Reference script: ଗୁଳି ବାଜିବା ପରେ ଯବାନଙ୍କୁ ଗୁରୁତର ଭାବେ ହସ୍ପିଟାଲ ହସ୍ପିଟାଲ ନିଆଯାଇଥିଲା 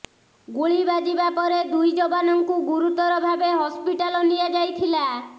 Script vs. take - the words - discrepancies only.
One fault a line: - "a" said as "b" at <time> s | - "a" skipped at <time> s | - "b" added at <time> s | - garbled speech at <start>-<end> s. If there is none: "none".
- "ଦୁଇ" added at 1.7 s
- "ହସ୍ପିଟାଲ" skipped at 4.2 s